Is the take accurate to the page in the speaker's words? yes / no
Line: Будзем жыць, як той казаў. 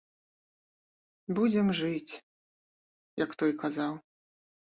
yes